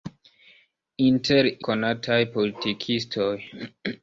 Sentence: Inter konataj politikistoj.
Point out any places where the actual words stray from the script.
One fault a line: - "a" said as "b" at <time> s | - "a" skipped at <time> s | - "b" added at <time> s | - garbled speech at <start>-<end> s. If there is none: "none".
none